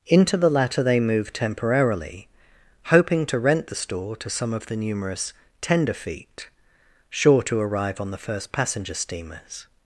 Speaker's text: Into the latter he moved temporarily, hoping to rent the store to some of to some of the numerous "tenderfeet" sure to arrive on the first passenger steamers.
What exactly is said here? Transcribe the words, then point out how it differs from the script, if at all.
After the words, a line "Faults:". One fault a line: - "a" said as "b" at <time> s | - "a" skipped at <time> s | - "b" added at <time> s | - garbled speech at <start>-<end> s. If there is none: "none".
Into the latter they moved temporarily, hoping to rent the store to some of the numerous "tenderfeet" sure to arrive on the first passenger steamers.
Faults:
- "he" said as "they" at 0.8 s
- "to some of" skipped at 4.7 s